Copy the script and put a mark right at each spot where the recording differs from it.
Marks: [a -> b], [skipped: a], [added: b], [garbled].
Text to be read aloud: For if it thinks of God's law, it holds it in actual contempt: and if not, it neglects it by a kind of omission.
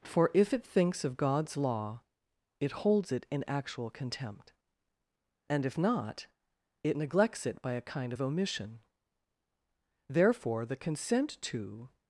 For if it thinks of God's law, it holds it in actual contempt: and if not, it neglects it by a kind of omission. [added: Therefore the consent to]